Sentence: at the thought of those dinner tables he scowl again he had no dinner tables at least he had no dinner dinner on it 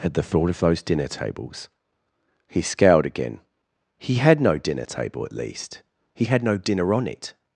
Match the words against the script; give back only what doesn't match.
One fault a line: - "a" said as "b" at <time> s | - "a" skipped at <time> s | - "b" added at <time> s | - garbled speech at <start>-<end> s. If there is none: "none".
- "scowl" said as "scowled" at 2.6 s
- "tables" said as "table" at 4.8 s
- "dinner" skipped at 6.9 s